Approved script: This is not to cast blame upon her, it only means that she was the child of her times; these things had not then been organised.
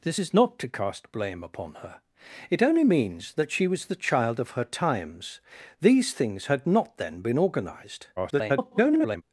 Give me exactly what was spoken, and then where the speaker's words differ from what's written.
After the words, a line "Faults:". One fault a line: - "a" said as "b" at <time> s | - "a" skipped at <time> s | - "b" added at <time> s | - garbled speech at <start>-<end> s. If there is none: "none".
This is not to cast blame upon her, it only means that she was the child of her times; these things had not then been organised. [garbled]
Faults:
- garbled speech at 8.2-9.2 s